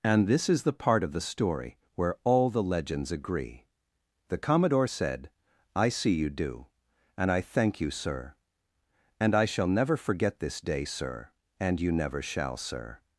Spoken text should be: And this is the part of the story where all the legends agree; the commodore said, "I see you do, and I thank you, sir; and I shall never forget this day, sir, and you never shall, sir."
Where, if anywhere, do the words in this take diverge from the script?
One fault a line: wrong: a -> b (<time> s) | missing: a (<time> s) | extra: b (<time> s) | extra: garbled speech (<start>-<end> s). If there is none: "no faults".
no faults